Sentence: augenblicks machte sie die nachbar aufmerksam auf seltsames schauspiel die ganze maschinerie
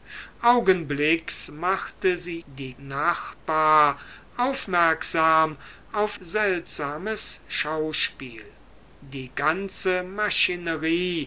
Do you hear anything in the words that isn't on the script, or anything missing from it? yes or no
no